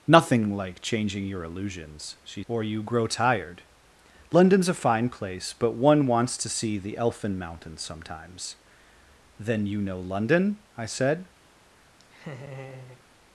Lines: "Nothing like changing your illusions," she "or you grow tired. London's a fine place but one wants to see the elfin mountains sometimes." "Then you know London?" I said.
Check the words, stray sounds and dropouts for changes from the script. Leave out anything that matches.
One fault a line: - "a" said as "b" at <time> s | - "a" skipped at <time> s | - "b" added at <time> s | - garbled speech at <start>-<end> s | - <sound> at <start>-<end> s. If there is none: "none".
- laugh at 12.0-13.0 s